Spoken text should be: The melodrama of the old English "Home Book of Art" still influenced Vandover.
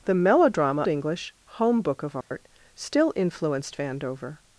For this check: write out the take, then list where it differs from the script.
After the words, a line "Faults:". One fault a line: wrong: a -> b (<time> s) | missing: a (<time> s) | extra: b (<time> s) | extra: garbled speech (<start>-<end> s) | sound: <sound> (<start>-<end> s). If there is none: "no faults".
The melodrama English "Home Book of Art" still influenced Vandover.
Faults:
missing: of the old (0.8 s)
sound: dropout (2.2-2.3 s)